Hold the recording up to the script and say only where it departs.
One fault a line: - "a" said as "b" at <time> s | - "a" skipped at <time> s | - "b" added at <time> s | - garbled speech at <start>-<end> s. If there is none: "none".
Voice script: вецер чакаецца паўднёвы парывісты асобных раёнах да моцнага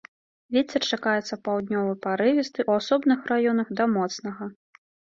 - "у" added at 2.7 s